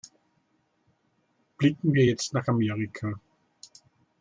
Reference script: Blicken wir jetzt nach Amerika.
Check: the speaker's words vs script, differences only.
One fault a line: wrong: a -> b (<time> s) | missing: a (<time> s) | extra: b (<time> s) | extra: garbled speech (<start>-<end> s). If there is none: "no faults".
no faults